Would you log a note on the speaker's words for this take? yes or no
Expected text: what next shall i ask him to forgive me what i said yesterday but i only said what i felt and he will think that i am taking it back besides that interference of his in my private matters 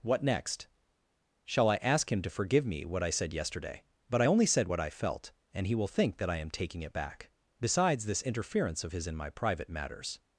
yes